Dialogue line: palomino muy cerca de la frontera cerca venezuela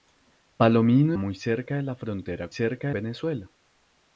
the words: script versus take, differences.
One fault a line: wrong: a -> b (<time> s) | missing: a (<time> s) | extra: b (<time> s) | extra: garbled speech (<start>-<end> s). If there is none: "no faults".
no faults